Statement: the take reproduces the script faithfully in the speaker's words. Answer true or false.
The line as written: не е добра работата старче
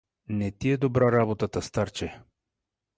false